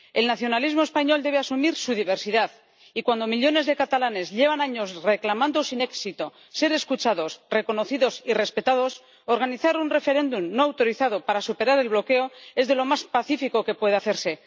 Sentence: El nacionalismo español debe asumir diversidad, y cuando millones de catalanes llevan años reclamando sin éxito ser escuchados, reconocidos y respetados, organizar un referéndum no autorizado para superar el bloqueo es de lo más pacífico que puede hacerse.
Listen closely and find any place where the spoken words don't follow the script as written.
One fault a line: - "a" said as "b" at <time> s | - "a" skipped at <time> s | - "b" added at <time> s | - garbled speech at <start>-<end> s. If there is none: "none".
- "su" added at 1.8 s